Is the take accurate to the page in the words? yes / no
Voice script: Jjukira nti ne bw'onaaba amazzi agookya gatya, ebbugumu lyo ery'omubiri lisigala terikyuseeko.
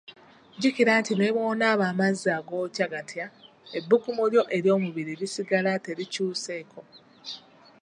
yes